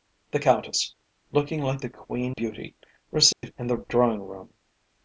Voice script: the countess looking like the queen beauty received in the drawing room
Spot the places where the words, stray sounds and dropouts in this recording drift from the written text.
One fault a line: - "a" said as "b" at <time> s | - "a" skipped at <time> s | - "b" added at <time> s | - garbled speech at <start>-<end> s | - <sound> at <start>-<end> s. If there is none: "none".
- dropout at 3.3-3.4 s